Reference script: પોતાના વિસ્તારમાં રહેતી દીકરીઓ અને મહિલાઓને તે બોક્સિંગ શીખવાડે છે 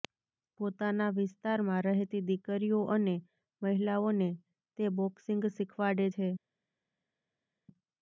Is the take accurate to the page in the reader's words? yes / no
yes